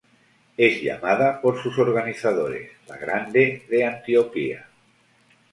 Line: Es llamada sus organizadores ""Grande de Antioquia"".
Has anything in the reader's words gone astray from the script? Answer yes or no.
yes